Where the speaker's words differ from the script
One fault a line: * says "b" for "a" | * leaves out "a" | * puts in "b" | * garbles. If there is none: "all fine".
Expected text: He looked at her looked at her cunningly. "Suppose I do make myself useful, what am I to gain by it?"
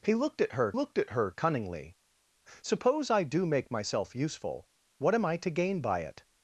all fine